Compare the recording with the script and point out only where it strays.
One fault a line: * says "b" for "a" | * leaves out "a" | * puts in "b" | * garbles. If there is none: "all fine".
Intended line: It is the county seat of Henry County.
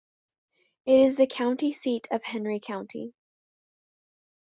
all fine